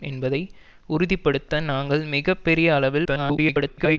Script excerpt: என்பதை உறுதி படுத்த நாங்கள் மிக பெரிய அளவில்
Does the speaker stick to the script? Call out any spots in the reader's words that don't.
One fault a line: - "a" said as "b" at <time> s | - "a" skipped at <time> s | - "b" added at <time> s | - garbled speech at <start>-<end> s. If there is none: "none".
- garbled speech at 3.0-4.0 s